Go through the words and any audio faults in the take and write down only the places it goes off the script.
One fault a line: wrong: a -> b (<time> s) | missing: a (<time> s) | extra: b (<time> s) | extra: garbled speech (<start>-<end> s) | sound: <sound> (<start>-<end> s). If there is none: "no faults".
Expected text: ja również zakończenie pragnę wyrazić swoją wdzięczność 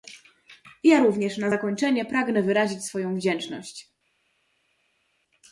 extra: na (1.4 s)